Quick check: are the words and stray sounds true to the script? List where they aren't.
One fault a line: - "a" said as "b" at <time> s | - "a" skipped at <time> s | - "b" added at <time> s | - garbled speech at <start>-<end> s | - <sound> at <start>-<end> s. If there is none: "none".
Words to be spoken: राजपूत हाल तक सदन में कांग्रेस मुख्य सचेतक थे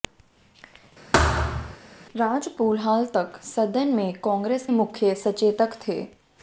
- thud at 1.1-1.8 s